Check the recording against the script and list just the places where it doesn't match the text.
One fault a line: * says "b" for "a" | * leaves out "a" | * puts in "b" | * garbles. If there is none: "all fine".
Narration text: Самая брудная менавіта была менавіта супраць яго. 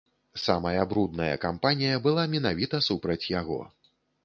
* says "кампанія" for "менавіта"